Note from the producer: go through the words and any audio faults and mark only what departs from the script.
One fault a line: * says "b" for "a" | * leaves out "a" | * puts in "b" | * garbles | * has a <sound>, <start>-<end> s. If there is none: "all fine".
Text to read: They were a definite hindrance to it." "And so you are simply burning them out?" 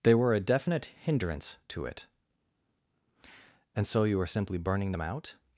all fine